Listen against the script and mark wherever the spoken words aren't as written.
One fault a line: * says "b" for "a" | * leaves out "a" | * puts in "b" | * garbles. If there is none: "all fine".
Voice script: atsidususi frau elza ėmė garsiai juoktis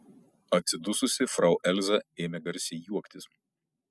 all fine